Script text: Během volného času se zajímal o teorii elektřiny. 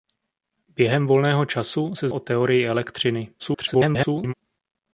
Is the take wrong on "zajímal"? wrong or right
wrong